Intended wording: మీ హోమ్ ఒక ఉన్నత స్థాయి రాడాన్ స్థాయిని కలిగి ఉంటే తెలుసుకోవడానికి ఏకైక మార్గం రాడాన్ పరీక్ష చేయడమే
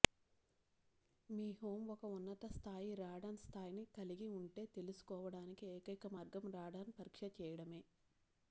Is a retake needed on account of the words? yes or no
no